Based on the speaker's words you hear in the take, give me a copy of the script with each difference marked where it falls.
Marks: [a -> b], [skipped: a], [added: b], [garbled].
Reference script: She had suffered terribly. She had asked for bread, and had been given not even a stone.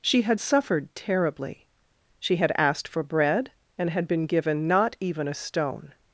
She had suffered terribly. She had asked for bread, and had been given not even a stone.